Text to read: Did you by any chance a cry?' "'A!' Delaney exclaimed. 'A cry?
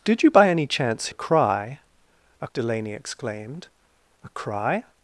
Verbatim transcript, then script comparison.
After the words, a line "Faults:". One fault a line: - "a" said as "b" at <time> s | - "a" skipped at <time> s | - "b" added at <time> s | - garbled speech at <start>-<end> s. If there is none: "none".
Did you by any chance a cry?' "'A!' Delaney exclaimed. 'A cry?
Faults:
none